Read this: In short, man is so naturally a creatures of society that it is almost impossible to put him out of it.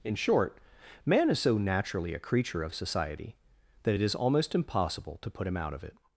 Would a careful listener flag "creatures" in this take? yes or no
yes